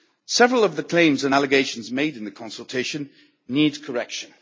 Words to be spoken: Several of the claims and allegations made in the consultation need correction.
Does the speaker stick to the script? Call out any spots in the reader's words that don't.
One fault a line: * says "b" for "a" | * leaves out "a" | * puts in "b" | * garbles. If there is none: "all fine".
all fine